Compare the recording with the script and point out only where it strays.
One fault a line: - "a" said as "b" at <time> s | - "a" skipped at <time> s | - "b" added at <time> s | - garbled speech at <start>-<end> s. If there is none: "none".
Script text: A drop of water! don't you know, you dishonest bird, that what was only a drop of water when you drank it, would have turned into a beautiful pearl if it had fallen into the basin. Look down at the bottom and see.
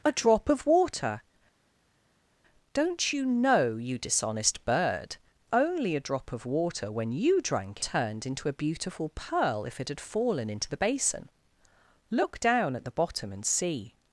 - "that what was" skipped at 5.2 s
- "it would have" skipped at 7.8 s